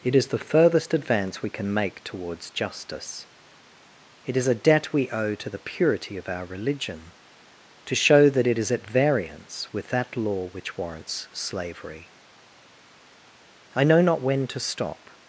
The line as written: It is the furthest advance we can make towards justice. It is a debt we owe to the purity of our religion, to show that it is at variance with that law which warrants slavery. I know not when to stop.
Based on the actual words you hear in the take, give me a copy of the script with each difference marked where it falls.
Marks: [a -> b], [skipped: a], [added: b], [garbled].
It is the furthest advance we can make towards justice. It is a debt we owe to the purity of our religion, to show that it is at variance with that law which warrants slavery. I know not when to stop.